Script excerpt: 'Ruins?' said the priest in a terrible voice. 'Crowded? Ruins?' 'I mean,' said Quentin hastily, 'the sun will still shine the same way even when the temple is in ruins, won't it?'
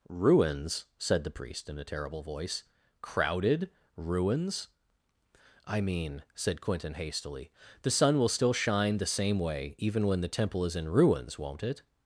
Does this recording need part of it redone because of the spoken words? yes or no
no